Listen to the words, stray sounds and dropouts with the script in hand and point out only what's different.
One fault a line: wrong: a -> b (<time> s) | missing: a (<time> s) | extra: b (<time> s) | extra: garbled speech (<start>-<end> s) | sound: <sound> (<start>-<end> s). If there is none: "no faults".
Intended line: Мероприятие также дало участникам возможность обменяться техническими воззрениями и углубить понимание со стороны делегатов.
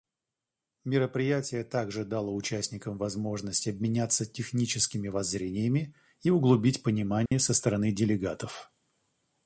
sound: dropout (7.3-7.3 s)